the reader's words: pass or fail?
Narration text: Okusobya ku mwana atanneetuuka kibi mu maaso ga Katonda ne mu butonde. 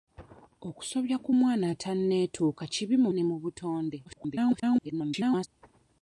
fail